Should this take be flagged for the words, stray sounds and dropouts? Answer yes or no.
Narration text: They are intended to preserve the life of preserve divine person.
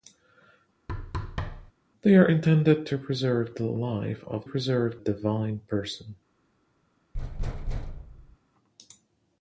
yes